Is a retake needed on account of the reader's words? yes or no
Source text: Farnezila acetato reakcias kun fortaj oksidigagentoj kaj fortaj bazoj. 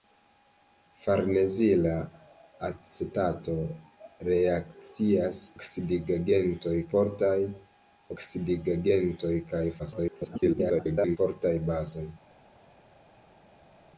yes